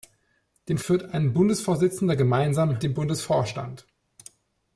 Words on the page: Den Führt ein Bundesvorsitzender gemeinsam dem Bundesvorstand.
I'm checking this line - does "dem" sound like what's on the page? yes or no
yes